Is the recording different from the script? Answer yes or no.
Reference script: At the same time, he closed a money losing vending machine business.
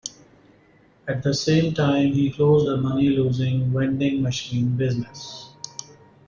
no